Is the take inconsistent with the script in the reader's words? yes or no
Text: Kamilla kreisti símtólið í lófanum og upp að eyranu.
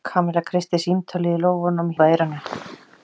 no